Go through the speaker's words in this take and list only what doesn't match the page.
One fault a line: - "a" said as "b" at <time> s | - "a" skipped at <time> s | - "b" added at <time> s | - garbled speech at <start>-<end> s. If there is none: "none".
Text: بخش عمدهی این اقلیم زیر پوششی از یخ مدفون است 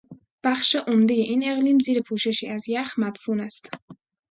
none